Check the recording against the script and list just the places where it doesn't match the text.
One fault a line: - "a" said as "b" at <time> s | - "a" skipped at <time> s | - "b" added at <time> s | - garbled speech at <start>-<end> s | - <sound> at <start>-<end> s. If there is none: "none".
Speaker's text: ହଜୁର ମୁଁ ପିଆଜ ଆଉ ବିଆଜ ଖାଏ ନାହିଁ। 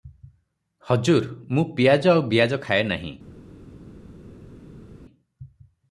none